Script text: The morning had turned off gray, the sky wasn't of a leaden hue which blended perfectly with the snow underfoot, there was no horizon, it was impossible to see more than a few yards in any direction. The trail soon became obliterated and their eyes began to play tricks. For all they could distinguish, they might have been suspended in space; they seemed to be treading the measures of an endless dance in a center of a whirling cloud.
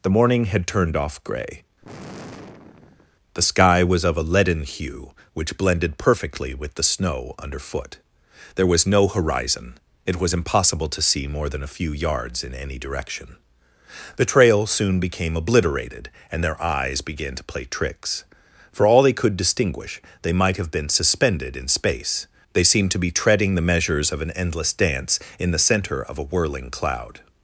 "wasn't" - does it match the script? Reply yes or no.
no